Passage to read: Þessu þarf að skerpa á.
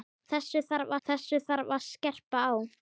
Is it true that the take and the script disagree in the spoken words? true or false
true